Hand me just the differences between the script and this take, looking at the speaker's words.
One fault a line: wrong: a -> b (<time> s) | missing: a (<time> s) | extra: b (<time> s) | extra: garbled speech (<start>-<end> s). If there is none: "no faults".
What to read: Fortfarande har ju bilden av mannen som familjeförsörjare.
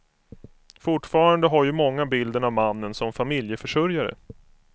extra: många (1.7 s)